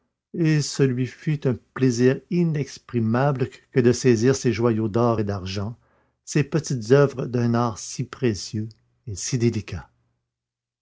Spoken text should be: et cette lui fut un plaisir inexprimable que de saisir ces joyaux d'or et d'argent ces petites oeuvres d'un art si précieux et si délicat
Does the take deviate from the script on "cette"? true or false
true